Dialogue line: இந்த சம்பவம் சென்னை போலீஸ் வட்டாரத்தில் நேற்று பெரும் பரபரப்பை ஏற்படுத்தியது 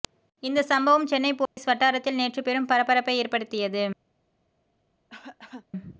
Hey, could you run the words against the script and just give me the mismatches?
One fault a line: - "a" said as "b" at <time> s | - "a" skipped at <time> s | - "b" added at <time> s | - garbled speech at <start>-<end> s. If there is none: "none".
none